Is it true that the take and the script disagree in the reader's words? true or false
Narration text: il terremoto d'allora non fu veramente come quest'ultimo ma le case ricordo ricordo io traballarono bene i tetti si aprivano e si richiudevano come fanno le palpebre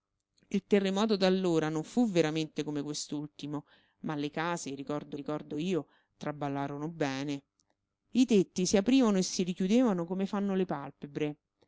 false